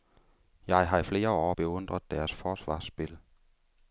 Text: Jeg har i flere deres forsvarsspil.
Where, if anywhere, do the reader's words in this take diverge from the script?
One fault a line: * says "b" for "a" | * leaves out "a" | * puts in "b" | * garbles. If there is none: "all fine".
* puts in "år beundret"